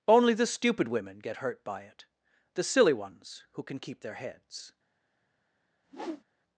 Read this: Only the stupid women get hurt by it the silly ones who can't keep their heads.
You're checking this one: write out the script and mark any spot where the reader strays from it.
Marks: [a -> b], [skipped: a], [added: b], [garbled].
Only the stupid women get hurt by it the silly ones who [can't -> can] keep their heads.